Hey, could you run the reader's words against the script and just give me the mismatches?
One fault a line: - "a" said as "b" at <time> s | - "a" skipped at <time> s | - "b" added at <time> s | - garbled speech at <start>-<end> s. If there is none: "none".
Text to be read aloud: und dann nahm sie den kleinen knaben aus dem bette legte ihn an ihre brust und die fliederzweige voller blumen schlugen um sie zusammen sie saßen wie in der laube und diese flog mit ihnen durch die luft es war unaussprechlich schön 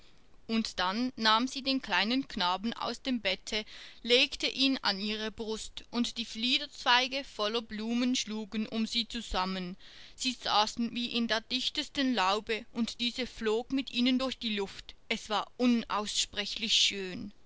- "dichtesten" added at 11.4 s